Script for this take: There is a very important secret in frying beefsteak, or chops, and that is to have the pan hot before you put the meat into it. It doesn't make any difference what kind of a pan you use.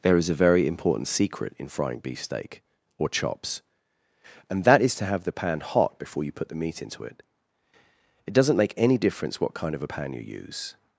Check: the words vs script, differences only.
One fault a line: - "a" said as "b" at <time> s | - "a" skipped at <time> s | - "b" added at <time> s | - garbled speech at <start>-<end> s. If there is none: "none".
none